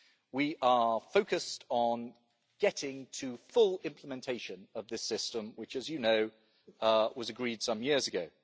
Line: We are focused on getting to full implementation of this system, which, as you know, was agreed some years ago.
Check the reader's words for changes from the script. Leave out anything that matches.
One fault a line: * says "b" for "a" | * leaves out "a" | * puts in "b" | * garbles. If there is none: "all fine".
all fine